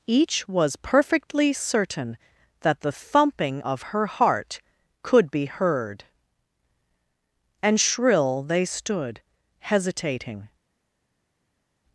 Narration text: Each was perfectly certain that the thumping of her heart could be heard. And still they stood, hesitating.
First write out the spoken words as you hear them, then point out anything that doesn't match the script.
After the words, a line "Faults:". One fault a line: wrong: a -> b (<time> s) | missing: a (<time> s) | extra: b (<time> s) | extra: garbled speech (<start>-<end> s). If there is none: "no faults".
Each was perfectly certain that the thumping of her heart could be heard. And shrill they stood, hesitating.
Faults:
wrong: still -> shrill (7.8 s)